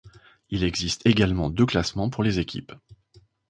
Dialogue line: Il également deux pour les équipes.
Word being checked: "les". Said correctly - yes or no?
yes